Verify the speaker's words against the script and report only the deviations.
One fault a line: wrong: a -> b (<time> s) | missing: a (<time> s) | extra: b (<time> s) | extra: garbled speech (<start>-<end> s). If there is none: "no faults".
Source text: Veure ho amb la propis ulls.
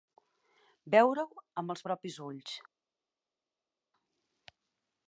wrong: la -> els (1.8 s)